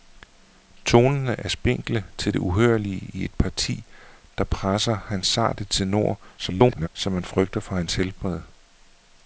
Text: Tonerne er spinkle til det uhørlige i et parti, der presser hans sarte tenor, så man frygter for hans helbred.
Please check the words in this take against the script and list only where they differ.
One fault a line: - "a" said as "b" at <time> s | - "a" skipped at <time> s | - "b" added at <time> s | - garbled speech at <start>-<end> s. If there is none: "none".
- garbled speech at 6.4-6.9 s